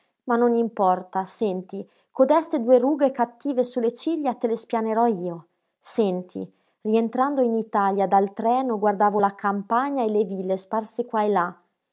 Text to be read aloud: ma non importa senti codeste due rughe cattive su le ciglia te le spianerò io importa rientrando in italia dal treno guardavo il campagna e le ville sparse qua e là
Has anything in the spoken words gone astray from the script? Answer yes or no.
yes